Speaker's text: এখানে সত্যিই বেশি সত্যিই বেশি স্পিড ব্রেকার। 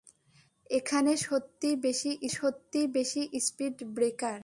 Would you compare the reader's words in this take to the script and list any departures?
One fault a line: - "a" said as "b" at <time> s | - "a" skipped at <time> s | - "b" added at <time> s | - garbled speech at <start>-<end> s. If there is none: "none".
none